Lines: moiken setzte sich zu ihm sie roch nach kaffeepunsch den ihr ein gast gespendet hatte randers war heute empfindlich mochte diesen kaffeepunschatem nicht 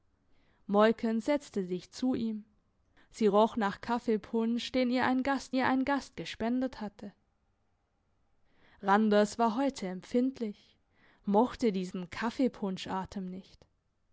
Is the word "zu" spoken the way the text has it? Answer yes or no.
yes